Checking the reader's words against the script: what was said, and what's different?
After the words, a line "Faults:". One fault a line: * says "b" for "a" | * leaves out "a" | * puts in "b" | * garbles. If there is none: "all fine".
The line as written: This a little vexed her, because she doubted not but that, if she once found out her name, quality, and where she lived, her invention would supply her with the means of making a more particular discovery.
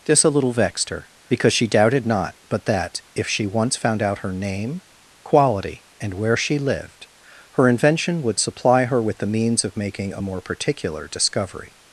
This a little vexed her, because she doubted not but that, if she once found out her name, quality, and where she lived, her invention would supply her with the means of making a more particular discovery.
Faults:
all fine